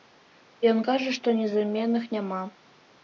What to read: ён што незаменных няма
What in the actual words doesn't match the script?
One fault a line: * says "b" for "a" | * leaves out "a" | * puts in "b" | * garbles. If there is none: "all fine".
* puts in "кажа"